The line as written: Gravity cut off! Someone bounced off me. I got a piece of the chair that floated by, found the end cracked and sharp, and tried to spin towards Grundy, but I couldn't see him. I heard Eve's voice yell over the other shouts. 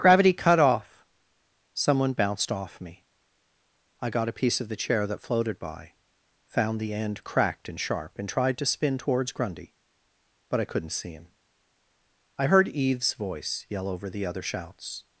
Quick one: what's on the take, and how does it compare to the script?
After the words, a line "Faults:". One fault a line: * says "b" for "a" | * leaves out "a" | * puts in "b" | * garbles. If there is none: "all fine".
Gravity cut off! Someone bounced off me. I got a piece of the chair that floated by, found the end cracked and sharp, and tried to spin towards Grundy, but I couldn't see him. I heard Eve's voice yell over the other shouts.
Faults:
all fine